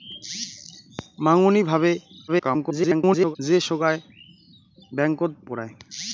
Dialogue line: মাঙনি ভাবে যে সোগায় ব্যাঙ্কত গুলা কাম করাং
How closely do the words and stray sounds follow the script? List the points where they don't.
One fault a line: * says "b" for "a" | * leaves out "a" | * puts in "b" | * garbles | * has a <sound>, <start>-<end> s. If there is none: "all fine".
* garbles
* leaves out "গুলা কাম"